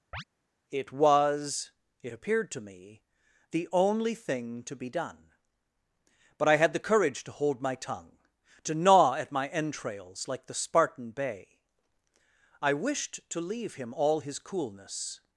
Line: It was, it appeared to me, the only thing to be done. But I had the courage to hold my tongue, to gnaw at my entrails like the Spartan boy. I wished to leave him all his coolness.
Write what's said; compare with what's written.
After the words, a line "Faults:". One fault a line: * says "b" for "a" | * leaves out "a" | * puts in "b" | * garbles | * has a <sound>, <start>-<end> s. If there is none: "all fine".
It was, it appeared to me, the only thing to be done. But I had the courage to hold my tongue, to gnaw at my entrails like the Spartan bay. I wished to leave him all his coolness.
Faults:
* has a chirp, 0.1-0.2 s
* says "bay" for "boy"